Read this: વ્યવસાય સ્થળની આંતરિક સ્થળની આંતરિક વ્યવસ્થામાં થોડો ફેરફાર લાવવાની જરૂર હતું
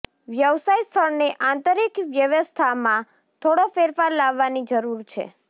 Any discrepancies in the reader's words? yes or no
yes